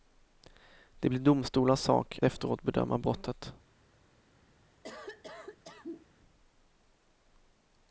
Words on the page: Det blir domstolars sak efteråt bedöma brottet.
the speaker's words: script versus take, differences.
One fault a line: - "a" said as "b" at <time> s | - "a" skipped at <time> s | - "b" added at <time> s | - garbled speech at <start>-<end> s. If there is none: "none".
none